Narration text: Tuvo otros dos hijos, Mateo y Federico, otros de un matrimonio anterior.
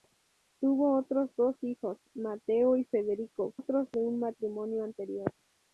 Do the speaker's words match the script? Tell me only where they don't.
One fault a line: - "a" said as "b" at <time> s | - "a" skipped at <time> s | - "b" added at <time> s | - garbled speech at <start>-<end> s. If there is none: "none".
none